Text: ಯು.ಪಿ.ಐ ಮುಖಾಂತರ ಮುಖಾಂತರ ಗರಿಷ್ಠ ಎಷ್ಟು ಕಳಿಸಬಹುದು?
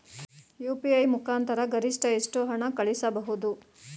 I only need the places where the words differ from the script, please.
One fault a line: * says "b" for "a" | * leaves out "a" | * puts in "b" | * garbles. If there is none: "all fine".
* leaves out "ಮುಖಾಂತರ"
* puts in "ಹಣ"